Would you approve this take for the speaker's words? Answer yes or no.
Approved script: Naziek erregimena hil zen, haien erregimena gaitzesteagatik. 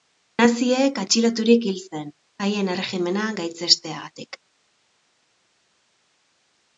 no